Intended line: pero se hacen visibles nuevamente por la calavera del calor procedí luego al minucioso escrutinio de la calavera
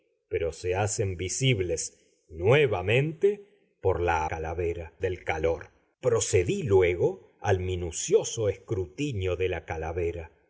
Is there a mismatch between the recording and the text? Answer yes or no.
no